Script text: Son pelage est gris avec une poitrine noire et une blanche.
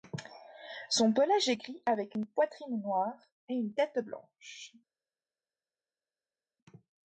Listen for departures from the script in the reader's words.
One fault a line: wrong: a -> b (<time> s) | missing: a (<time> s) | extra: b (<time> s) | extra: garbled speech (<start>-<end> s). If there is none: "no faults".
extra: tête (3.7 s)